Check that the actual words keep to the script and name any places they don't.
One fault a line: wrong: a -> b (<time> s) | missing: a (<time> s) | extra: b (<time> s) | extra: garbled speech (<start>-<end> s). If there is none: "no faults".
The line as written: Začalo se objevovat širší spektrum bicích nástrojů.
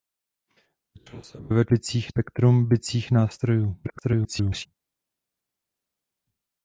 wrong: širší -> bicích (1.7 s)
extra: garbled speech (3.8-4.7 s)